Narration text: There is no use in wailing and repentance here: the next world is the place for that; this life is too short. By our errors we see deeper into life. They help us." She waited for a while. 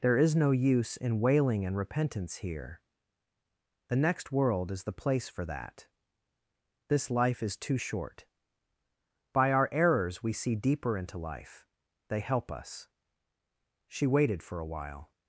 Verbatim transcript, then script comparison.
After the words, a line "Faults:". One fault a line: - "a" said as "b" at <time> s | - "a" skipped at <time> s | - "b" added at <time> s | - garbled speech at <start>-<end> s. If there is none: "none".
There is no use in wailing and repentance here: the next world is the place for that; this life is too short. By our errors we see deeper into life. They help us." She waited for a while.
Faults:
none